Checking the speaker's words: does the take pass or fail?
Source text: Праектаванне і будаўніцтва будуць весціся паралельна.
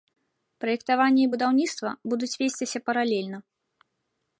pass